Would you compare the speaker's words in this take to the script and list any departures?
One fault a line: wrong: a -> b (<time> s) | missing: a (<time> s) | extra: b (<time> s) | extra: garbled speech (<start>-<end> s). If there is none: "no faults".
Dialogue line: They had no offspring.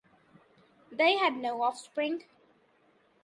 no faults